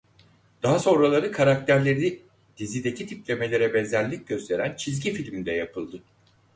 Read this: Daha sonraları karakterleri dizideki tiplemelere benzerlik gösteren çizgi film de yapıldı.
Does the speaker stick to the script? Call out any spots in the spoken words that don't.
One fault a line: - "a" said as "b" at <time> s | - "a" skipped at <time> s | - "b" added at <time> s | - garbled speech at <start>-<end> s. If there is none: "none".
none